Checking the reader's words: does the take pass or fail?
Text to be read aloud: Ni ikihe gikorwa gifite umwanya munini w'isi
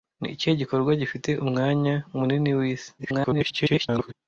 fail